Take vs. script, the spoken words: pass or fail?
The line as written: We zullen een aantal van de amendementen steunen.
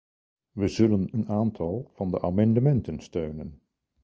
pass